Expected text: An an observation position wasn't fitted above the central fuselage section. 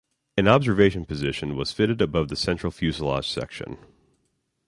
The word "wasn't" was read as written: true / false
false